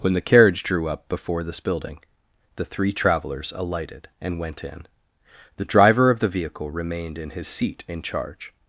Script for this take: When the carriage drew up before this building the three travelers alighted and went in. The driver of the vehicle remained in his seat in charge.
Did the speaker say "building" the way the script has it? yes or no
yes